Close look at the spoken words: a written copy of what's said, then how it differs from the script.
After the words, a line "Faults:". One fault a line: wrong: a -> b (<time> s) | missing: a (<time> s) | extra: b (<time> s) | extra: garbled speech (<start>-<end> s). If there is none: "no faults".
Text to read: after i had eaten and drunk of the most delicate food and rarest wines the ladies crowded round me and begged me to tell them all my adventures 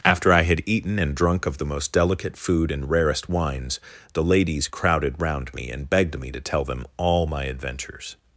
after i had eaten and drunk of the most delicate food and rarest wines the ladies crowded round me and begged me to tell them all my adventures
Faults:
no faults